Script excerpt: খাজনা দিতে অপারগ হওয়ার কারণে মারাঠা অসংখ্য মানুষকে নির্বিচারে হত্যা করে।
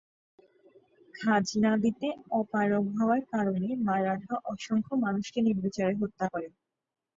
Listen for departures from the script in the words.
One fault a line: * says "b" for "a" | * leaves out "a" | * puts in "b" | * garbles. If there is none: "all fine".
all fine